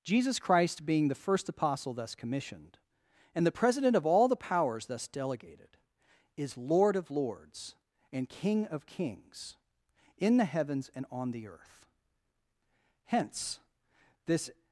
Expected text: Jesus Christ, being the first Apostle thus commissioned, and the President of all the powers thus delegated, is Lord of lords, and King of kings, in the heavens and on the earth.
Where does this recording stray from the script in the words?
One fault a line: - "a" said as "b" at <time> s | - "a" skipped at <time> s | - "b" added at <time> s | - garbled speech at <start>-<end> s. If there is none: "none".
- "Hence this" added at 13.1 s